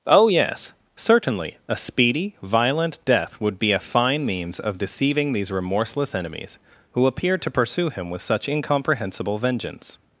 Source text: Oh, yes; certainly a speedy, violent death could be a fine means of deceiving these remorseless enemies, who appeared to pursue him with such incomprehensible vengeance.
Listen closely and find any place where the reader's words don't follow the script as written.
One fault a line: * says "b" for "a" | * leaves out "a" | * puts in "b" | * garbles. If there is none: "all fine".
* says "would" for "could"